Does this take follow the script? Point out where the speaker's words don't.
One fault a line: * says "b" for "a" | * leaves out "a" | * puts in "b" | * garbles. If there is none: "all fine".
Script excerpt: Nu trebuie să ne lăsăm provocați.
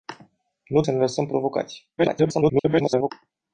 * leaves out "trebuie"
* garbles